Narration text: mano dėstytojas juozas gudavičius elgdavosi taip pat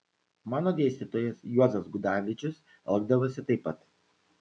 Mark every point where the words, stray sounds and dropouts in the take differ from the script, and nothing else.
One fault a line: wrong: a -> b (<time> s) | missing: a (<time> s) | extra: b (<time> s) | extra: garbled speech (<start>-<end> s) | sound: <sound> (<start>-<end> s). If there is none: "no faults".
no faults